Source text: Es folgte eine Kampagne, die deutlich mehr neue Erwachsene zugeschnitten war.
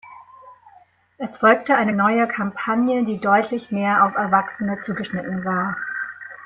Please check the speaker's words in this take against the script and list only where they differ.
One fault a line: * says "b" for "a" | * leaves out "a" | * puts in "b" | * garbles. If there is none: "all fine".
* puts in "neue"
* says "auf" for "neue"